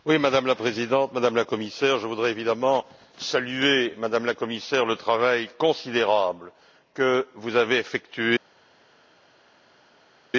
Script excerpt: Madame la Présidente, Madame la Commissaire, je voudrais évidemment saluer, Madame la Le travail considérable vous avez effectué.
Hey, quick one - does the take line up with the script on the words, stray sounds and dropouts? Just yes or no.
no